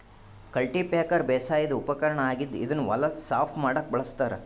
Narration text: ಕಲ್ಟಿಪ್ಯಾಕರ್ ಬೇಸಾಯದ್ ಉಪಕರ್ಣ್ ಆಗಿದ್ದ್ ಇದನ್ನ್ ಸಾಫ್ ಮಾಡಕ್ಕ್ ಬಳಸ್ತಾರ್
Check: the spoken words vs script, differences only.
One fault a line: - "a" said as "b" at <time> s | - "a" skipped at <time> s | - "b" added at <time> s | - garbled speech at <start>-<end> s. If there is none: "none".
- "ಹೊಲ" added at 2.9 s